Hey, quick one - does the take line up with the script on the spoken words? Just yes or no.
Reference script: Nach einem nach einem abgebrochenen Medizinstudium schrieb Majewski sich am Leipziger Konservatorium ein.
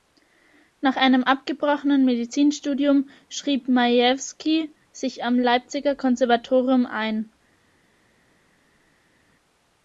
no